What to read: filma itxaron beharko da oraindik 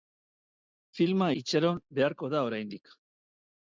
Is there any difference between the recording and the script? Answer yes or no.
no